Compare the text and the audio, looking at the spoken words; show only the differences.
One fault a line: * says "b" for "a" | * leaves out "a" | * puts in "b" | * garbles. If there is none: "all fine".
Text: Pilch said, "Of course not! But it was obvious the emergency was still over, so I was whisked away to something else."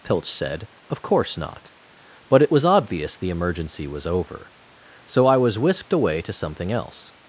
* leaves out "still"